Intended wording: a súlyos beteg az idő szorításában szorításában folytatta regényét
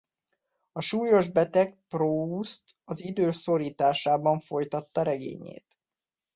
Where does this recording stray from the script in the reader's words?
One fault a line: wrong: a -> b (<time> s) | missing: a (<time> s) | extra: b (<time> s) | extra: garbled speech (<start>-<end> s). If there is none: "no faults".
extra: proust (1.9 s)
missing: szorításában (4.4 s)